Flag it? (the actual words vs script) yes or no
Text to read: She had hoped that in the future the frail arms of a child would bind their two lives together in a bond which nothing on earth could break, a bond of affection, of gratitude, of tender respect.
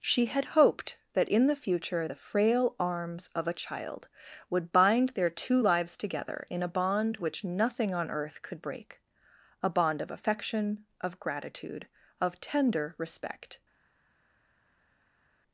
no